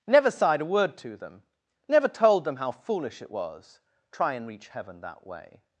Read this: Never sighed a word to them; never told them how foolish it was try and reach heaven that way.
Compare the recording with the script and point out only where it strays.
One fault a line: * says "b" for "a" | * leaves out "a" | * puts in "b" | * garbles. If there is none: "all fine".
all fine